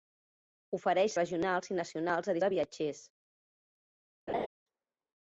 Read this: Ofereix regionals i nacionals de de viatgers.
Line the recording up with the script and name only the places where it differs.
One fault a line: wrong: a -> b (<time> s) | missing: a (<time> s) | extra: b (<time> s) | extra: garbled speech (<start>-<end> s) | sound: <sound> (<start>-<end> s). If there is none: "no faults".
sound: laugh (4.3-4.5 s)